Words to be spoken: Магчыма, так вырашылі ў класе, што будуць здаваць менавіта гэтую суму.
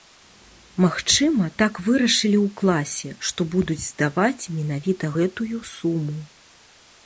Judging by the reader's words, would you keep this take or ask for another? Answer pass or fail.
pass